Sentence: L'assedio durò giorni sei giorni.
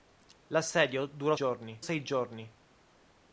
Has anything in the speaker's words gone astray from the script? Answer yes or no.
no